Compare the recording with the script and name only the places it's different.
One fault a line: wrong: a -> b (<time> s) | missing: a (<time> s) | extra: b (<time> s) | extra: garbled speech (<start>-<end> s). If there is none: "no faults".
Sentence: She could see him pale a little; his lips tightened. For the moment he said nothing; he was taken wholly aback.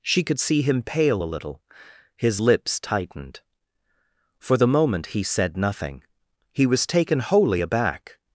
no faults